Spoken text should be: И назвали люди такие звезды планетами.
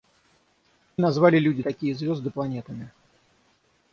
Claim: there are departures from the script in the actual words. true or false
false